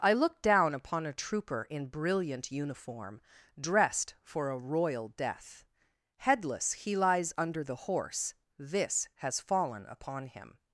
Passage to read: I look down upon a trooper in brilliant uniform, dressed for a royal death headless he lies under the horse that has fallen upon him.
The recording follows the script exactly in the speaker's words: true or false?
false